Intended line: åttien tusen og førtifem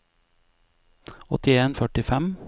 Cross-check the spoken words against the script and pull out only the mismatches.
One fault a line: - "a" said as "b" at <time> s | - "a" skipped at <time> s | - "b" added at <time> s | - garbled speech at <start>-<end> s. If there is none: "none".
- "tusen og" skipped at 1.8 s